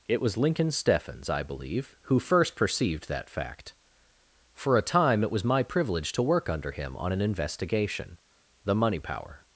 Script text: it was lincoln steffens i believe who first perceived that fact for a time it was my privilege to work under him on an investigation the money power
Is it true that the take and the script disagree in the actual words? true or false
false